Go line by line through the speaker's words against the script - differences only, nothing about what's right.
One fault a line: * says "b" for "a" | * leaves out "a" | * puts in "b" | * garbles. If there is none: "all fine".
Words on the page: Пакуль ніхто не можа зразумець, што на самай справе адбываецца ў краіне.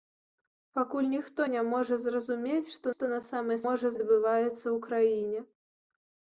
* puts in "што"
* says "можа" for "справе"